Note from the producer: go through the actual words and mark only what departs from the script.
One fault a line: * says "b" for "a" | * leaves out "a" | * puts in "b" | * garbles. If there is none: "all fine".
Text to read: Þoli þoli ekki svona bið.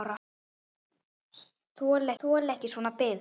all fine